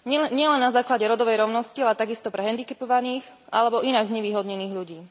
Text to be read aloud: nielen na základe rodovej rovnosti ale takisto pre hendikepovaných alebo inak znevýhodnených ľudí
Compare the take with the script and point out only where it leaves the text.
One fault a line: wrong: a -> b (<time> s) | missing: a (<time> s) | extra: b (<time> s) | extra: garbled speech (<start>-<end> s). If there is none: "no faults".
no faults